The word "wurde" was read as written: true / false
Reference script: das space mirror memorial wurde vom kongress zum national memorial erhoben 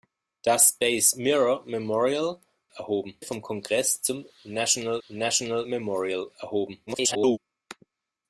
false